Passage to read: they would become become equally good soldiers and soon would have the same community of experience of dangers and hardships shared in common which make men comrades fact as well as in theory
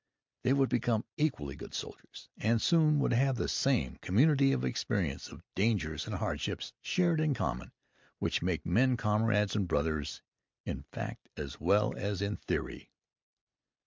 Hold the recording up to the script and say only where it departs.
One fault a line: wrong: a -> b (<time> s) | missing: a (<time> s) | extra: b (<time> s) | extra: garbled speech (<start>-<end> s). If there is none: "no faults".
missing: become (1.1 s)
extra: and brothers in (9.6 s)